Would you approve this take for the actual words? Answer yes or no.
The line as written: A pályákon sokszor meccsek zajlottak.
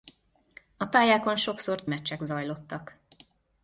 yes